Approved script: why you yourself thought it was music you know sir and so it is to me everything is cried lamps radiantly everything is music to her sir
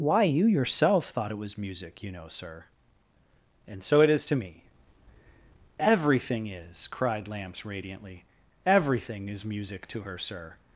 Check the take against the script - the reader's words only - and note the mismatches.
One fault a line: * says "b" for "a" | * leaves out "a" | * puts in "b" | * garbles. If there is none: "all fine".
all fine